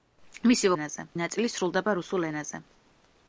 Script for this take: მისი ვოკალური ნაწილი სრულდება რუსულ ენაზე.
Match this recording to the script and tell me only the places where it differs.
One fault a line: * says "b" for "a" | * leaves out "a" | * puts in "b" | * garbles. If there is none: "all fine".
* says "ენაზე" for "ვოკალური"